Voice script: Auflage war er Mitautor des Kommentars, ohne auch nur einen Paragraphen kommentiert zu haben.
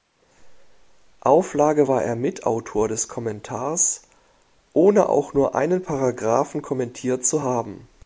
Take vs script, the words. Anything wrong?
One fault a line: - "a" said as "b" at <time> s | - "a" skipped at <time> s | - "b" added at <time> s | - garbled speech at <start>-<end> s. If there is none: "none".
none